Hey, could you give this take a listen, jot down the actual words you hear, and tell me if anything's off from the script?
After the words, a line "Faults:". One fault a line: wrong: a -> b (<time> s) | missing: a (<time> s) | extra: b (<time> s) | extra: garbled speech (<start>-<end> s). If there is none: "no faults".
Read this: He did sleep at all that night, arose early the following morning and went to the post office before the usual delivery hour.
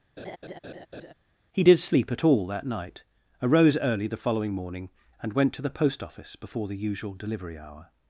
He did sleep at all that night, arose early the following morning and went to the post office before the usual delivery hour.
Faults:
no faults